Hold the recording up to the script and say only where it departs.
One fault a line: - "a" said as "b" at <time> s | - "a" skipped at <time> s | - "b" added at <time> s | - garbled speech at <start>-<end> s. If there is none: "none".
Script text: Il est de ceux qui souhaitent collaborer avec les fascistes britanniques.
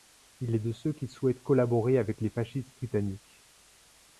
none